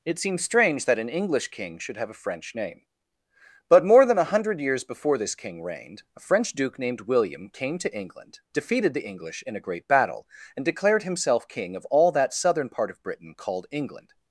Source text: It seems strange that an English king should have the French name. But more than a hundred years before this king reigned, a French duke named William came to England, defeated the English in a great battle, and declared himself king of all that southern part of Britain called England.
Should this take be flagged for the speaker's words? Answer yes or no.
yes